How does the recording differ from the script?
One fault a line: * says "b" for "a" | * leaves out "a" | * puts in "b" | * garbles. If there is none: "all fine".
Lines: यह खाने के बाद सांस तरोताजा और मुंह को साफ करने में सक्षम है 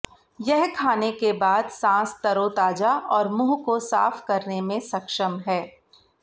all fine